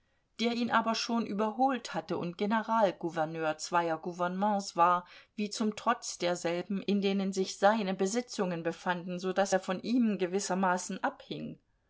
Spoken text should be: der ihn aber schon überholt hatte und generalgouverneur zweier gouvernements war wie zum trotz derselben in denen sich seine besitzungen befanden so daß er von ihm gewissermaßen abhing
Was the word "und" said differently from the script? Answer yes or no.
no